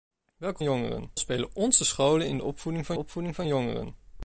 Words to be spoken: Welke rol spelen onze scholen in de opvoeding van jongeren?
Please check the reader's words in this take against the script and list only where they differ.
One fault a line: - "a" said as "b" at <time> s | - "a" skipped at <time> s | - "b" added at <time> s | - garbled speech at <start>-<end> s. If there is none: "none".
- "rol" said as "jongeren" at 0.6 s
- "opvoeding van" added at 3.0 s